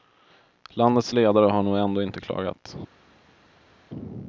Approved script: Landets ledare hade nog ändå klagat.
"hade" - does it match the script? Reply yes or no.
no